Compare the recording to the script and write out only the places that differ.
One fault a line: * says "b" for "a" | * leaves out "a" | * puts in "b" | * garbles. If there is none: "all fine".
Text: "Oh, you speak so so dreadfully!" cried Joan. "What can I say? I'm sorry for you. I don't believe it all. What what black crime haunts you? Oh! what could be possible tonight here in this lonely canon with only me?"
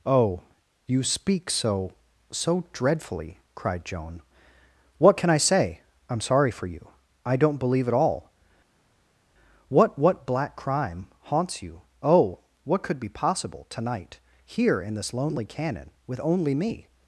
all fine